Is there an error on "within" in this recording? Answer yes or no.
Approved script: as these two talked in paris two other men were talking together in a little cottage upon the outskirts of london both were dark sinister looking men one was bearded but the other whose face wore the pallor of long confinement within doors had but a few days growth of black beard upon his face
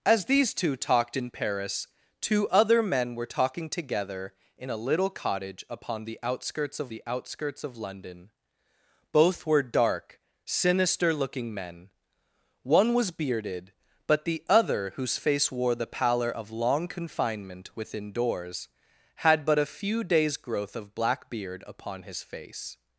no